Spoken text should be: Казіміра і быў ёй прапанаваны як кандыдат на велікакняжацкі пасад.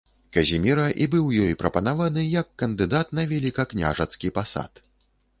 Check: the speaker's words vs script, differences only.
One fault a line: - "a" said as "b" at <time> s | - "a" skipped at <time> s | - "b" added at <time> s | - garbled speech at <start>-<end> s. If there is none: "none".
none